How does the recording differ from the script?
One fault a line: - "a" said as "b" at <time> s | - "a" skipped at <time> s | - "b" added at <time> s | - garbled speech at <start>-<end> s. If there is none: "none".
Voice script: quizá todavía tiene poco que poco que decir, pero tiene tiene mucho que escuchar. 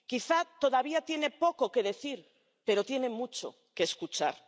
- "poco que" skipped at 1.8 s
- "tiene" skipped at 3.1 s